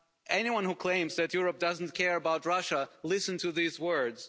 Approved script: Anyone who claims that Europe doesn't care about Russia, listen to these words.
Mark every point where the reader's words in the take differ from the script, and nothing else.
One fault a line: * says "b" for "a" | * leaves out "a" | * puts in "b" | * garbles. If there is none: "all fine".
all fine